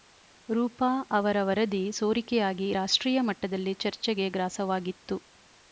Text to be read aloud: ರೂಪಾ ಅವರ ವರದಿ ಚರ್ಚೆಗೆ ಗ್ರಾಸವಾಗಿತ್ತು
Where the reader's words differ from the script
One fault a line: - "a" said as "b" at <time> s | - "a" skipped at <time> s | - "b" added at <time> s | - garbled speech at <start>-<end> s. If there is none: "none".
- "ಸೋರಿಕೆಯಾಗಿ ರಾಷ್ಟ್ರೀಯ ಮಟ್ಟದಲ್ಲಿ" added at 1.9 s